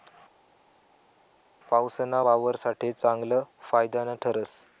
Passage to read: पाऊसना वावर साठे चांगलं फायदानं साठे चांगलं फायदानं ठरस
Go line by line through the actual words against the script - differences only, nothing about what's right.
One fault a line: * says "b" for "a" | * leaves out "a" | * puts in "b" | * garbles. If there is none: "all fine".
* leaves out "साठे चांगलं फायदानं"